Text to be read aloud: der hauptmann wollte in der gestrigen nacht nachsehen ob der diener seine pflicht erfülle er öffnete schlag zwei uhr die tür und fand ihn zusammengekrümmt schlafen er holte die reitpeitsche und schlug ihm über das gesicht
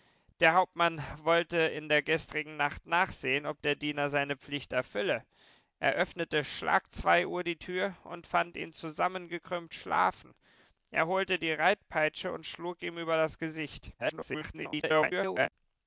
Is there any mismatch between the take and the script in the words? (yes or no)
yes